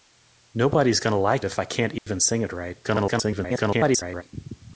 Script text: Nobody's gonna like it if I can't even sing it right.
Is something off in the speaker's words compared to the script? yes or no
yes